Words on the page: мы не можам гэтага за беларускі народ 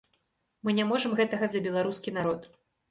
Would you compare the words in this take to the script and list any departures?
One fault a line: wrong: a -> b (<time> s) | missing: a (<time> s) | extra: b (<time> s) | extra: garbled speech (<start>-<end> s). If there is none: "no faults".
no faults